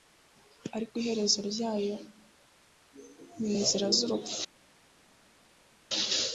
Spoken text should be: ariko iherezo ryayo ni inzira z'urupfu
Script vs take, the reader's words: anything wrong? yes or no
no